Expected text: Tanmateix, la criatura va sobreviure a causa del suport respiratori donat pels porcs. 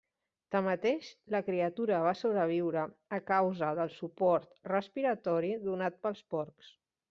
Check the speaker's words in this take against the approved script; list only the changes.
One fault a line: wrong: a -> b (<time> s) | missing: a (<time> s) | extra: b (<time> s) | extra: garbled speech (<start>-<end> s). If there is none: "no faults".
no faults